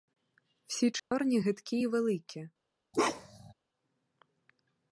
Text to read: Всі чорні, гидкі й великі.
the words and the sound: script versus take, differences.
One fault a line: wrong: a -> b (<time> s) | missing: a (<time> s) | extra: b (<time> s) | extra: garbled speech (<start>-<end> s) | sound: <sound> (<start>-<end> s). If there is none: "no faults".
sound: dropout (1.0-1.1 s)
sound: bark (2.9-3.5 s)